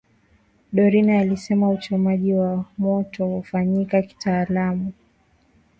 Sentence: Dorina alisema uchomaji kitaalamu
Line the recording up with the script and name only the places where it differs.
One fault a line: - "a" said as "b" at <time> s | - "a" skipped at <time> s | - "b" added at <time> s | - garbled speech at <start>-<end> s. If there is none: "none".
- "wa moto hufanyika" added at 2.3 s